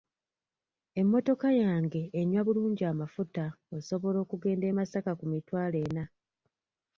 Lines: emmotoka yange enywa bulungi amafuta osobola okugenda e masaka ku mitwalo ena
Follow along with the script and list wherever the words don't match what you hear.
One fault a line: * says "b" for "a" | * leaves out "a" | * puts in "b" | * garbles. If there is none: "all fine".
all fine